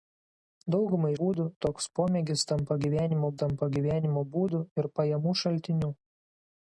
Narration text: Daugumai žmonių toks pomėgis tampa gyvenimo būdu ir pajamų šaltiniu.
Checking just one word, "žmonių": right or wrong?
wrong